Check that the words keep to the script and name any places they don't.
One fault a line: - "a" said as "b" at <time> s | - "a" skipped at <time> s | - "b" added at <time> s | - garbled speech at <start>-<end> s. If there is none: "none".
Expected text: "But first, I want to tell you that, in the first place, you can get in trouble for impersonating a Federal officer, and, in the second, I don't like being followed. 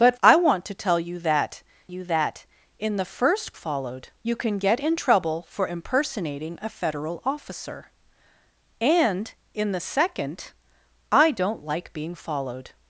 - "first" skipped at 0.2 s
- "you that" added at 1.9 s
- "place" said as "followed" at 3.5 s